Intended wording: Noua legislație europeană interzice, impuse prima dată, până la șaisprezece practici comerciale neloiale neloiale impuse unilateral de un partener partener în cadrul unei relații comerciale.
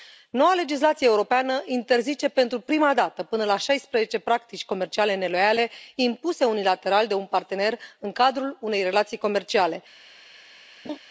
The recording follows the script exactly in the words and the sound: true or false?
false